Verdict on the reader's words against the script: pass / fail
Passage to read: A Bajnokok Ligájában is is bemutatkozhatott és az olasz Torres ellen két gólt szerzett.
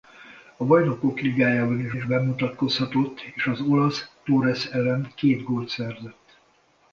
pass